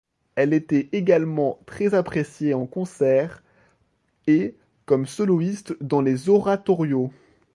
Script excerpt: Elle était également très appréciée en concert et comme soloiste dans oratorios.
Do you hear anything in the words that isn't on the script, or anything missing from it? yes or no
yes